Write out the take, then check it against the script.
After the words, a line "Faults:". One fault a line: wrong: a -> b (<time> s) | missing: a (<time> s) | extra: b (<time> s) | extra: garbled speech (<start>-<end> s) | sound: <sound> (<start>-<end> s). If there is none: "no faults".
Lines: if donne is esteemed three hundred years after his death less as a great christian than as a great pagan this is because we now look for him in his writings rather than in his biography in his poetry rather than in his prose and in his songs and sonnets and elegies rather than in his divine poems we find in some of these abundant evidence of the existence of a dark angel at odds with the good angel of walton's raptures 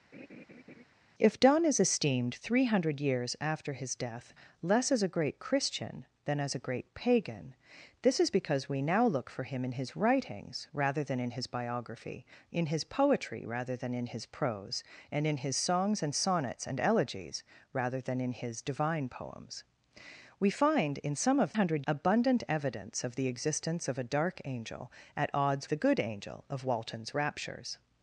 if donne is esteemed three hundred years after his death less as a great christian than as a great pagan this is because we now look for him in his writings rather than in his biography in his poetry rather than in his prose and in his songs and sonnets and elegies rather than in his divine poems we find in some of hundred abundant evidence of the existence of a dark angel at odds the good angel of walton's raptures
Faults:
sound: laugh (0.1-0.8 s)
wrong: these -> hundred (21.5 s)
missing: with (25.7 s)